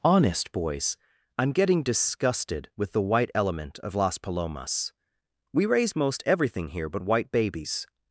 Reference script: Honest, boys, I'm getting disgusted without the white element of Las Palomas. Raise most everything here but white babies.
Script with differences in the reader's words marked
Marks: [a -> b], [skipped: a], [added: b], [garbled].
Honest, boys, I'm getting disgusted [without -> with] the white element of Las Palomas. [added: We] Raise most everything here but white babies.